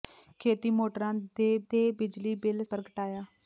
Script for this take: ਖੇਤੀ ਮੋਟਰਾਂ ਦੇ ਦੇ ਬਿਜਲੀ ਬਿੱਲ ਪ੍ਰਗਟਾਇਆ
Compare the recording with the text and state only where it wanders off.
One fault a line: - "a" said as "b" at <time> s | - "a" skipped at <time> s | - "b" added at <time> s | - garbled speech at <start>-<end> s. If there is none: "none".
none